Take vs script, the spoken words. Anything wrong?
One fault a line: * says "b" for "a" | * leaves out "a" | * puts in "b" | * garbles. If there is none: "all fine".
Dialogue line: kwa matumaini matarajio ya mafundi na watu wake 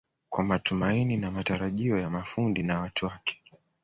* puts in "na"